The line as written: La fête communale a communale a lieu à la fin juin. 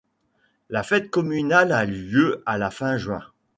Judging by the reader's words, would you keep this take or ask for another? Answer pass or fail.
fail